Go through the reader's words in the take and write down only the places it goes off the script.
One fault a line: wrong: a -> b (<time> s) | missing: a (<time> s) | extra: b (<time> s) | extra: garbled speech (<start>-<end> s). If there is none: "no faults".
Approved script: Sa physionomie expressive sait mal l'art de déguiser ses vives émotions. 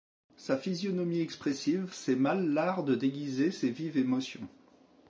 no faults